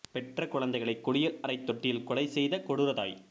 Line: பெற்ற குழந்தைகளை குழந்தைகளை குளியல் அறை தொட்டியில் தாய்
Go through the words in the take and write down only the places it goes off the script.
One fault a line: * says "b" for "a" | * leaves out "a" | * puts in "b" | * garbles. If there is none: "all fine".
* leaves out "குழந்தைகளை"
* puts in "கொலை செய்த கொடூர"